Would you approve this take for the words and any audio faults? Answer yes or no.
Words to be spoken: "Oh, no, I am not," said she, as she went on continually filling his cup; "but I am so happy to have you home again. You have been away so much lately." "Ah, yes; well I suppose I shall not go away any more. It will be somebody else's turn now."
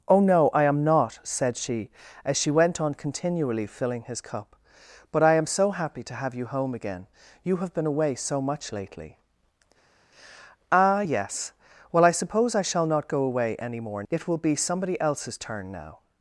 yes